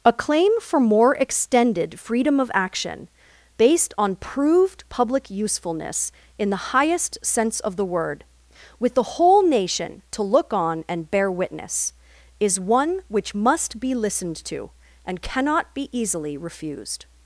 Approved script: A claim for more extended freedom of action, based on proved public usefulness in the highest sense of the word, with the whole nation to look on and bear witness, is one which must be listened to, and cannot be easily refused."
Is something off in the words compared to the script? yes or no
no